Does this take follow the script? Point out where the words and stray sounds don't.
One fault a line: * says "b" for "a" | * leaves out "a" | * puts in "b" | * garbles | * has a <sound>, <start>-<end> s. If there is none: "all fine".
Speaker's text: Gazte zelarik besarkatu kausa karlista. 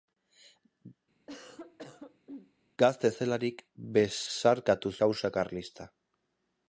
* has a cough, 1.3-2.5 s